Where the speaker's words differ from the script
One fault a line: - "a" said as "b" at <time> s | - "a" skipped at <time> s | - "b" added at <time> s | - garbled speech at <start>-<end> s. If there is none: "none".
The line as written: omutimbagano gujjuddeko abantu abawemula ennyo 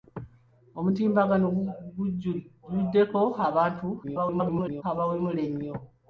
- garbled speech at 4.0-4.8 s